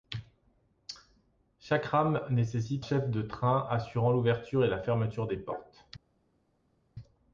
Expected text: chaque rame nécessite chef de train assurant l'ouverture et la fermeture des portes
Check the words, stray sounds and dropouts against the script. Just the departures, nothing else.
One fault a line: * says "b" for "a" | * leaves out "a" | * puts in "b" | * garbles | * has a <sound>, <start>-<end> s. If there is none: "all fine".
all fine